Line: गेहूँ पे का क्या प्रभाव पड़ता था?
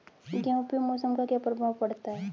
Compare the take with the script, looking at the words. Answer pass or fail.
fail